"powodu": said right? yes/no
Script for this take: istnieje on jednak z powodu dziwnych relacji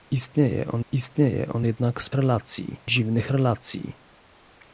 no